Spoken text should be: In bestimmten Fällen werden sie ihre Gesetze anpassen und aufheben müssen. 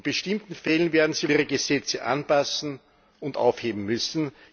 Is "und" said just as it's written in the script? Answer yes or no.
yes